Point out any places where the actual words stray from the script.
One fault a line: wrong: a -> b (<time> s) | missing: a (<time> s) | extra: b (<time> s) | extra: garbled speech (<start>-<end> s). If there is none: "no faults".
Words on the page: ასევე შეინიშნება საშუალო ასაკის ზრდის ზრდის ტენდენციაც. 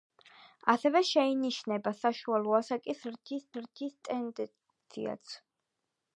no faults